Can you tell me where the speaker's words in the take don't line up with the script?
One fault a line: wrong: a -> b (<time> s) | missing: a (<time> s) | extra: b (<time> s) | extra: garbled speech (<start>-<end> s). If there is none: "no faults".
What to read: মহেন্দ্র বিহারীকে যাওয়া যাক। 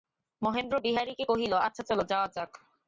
extra: কহিল আচ্ছা চলো (1.3 s)